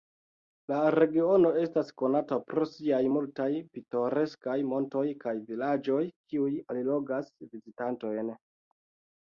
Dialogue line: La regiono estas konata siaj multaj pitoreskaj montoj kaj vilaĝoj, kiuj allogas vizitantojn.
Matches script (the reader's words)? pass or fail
fail